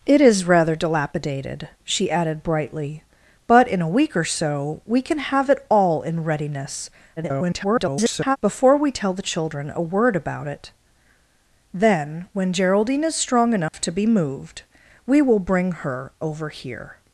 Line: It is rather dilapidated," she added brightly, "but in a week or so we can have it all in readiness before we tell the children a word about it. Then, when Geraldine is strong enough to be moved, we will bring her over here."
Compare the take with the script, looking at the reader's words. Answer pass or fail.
fail